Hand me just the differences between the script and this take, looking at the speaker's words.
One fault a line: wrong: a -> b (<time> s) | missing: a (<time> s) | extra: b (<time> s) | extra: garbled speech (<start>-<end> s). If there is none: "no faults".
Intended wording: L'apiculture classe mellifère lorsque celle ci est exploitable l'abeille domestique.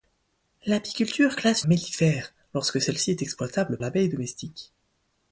no faults